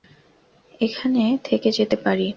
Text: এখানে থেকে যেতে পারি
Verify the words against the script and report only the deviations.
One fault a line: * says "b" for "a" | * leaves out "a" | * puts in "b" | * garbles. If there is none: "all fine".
all fine